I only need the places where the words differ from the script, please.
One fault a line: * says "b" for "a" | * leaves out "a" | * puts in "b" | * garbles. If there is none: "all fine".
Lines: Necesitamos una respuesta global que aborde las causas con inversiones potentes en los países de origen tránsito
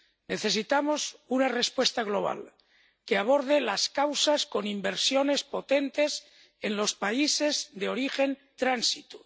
all fine